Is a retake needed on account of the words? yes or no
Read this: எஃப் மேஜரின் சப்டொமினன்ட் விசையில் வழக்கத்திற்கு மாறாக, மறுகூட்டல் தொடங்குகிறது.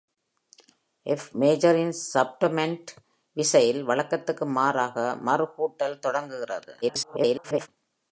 yes